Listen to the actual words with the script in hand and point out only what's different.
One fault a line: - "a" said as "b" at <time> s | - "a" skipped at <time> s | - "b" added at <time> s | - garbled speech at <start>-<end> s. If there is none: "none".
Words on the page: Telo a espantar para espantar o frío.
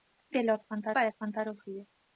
none